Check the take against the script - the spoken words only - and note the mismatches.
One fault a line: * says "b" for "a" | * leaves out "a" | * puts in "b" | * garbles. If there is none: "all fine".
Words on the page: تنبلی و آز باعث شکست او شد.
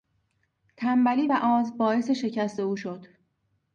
all fine